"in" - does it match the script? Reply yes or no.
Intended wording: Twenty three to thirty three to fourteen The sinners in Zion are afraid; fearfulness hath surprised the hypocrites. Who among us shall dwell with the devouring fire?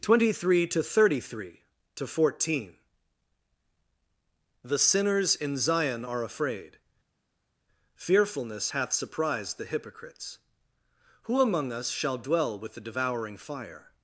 yes